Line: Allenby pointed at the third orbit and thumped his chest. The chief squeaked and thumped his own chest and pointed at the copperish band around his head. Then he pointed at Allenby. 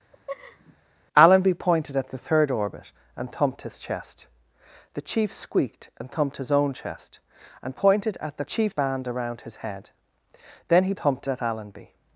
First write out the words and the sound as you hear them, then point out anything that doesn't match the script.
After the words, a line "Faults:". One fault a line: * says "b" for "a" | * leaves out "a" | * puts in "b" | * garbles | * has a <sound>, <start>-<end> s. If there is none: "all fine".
Allenby pointed at the third orbit and thumped his chest. The chief squeaked and thumped his own chest and pointed at the chief band around his head. Then he thumped at Allenby.
Faults:
* has a laugh, 0.1-0.8 s
* says "chief" for "copperish"
* says "thumped" for "pointed"